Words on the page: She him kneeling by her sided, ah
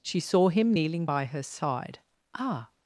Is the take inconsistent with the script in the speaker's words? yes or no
yes